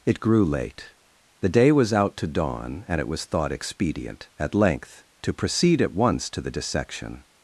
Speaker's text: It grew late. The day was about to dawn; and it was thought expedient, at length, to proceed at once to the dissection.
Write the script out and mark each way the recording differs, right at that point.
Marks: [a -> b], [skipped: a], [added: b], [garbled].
It grew late. The day was [about -> out] to dawn; and it was thought expedient, at length, to proceed at once to the dissection.